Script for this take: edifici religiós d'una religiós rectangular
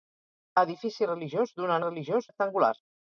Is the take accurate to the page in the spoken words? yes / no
yes